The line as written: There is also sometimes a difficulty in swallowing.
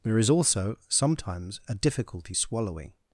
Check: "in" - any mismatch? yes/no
yes